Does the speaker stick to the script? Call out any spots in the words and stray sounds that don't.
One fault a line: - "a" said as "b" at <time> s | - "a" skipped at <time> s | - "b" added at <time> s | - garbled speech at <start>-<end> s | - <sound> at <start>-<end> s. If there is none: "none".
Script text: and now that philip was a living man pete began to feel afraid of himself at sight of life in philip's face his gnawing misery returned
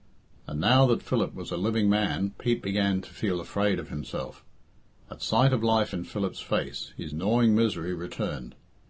none